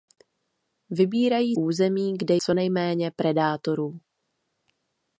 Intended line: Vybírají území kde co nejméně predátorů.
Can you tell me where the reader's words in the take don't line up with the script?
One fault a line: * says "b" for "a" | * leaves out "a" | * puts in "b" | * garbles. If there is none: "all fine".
all fine